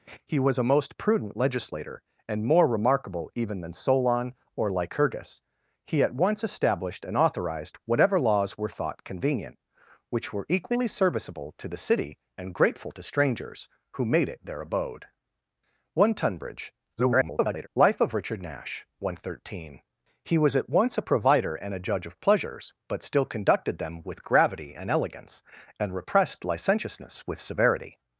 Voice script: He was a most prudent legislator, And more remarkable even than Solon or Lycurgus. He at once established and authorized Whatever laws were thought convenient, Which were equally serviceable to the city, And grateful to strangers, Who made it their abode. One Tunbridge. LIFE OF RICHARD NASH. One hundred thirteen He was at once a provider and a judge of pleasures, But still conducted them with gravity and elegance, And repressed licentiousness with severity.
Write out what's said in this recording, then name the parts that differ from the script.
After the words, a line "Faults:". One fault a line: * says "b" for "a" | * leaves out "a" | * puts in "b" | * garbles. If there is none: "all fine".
He was a most prudent legislator, And more remarkable even than Solon or Lycurgus. He at once established and authorized Whatever laws were thought convenient, Which were equally serviceable to the city, And grateful to strangers, Who made it their abode. One Tunbridge. [garbled] LIFE OF RICHARD NASH. One hundred thirteen He was at once a provider and a judge of pleasures, But still conducted them with gravity and elegance, And repressed licentiousness with severity.
Faults:
* garbles